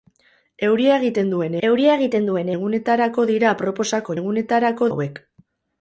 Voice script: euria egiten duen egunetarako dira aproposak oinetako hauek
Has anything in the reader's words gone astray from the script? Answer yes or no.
yes